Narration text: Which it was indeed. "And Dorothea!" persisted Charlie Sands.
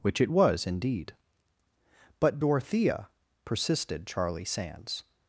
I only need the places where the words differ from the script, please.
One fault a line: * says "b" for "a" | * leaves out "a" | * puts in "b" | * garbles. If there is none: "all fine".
* says "But" for "And"